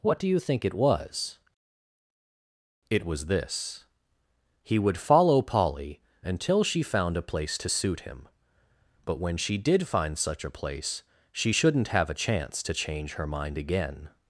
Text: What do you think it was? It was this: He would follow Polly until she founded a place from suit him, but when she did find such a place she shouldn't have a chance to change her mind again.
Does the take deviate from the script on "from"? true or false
true